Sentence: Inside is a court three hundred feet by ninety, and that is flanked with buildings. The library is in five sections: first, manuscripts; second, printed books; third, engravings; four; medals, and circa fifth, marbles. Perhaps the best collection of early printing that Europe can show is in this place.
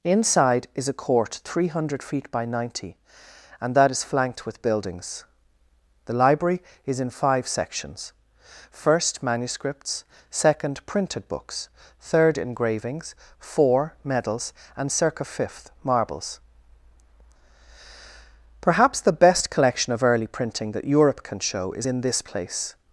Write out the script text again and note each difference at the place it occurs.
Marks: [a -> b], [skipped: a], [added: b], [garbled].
Inside is a court three hundred feet by ninety, and that is flanked with buildings. The library is in five sections: first, manuscripts; second, printed books; third, engravings; four; medals, and circa fifth, marbles. Perhaps the best collection of early printing that Europe can show is in this place.